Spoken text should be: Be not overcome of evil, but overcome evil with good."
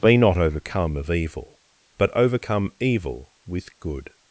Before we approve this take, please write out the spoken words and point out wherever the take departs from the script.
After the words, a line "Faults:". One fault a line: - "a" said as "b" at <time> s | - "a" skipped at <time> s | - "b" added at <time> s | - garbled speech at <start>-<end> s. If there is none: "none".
Be not overcome of evil, but overcome evil with good."
Faults:
none